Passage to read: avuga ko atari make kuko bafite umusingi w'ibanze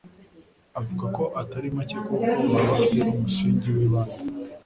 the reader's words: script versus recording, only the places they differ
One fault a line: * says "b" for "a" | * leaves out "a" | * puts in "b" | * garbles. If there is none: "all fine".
* puts in "baba"